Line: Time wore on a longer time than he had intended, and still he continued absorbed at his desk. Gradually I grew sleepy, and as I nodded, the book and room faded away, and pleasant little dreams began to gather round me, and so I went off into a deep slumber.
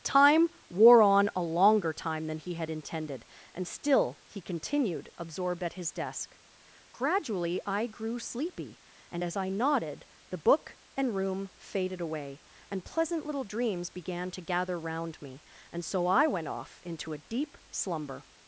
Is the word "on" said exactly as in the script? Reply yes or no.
yes